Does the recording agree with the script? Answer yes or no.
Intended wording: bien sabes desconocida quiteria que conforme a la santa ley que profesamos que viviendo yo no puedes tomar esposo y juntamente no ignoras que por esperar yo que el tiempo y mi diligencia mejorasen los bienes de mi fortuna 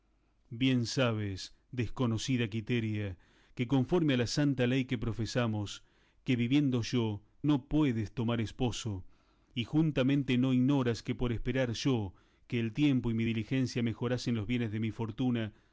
yes